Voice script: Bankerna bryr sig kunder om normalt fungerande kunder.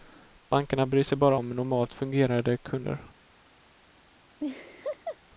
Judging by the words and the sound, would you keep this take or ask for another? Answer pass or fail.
fail